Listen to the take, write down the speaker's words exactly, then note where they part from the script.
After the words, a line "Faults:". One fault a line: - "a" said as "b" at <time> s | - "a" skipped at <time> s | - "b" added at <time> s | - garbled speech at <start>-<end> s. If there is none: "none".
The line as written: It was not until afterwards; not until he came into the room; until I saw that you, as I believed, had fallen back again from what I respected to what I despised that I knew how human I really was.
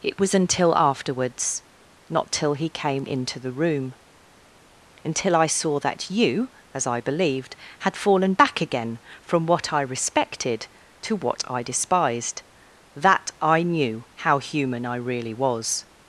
It was until afterwards; not till he came into the room; until I saw that you, as I believed, had fallen back again from what I respected to what I despised that I knew how human I really was.
Faults:
- "not" skipped at 0.3 s
- "until" said as "till" at 2.3 s